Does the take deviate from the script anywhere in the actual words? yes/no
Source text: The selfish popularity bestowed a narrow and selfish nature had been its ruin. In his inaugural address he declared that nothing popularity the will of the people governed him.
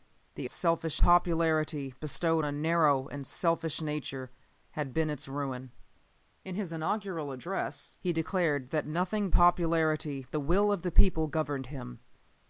no